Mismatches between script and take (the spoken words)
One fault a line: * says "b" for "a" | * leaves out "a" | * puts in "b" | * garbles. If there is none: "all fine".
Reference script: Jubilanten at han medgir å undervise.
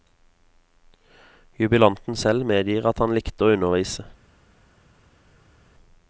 * puts in "selv medgir"
* says "likte" for "medgir"